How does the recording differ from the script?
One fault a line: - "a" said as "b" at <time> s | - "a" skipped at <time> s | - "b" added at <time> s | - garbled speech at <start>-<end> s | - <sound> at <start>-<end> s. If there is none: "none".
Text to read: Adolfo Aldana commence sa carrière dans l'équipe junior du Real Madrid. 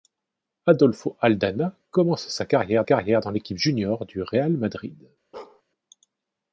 - "carrière" added at 2.8 s
- bark at 5.3-5.6 s